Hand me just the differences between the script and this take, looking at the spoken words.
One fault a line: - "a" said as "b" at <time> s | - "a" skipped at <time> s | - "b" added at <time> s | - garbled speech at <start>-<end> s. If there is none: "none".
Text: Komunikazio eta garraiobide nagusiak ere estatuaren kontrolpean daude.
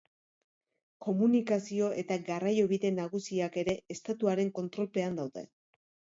none